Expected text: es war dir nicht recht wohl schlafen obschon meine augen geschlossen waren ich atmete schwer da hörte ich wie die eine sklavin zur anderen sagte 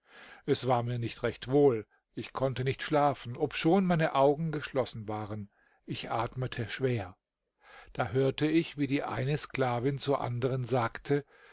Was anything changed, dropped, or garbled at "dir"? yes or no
yes